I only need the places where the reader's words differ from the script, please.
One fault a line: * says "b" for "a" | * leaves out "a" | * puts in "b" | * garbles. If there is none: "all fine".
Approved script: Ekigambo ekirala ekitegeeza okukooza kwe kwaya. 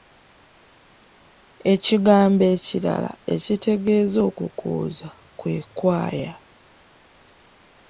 all fine